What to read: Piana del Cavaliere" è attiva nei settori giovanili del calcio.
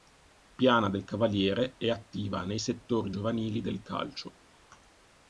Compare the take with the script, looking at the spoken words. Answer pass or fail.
pass